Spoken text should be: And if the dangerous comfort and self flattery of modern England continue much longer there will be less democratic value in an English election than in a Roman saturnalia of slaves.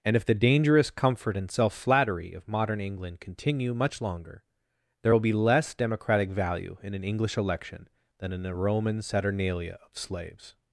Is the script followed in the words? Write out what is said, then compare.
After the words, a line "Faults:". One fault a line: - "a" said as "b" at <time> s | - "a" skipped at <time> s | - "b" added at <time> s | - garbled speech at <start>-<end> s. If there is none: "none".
And if the dangerous comfort and self flattery of modern England continue much longer there will be less democratic value in an English election than in a Roman saturnalia of slaves.
Faults:
none